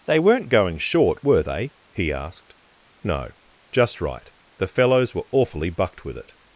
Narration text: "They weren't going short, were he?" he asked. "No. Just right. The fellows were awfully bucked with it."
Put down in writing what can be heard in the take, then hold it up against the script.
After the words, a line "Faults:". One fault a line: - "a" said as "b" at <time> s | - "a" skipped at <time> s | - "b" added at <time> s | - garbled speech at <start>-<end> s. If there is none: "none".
"They weren't going short, were they?" he asked. "No. Just right. The fellows were awfully bucked with it."
Faults:
- "he" said as "they" at 1.4 s